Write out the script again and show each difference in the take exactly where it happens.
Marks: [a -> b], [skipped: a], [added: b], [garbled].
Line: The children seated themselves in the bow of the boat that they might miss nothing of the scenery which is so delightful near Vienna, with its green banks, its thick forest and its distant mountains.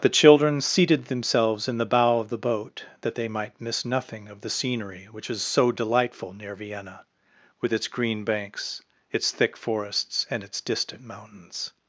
The children seated themselves in the bow of the boat that they might miss nothing of the scenery which is so delightful near Vienna, with its green banks, its thick [forest -> forests] and its distant mountains.